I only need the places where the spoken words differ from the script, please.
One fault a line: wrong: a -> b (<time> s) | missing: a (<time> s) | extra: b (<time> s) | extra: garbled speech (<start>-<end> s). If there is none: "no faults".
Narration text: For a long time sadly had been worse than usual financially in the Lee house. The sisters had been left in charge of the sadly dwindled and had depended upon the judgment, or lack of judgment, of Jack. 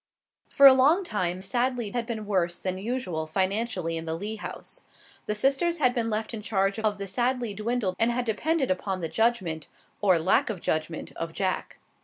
no faults